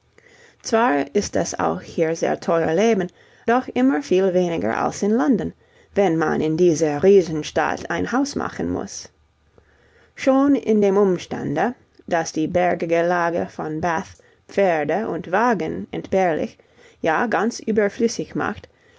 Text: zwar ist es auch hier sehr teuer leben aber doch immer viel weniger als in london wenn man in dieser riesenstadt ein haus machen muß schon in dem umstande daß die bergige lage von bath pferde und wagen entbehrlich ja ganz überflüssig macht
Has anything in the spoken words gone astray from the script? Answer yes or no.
yes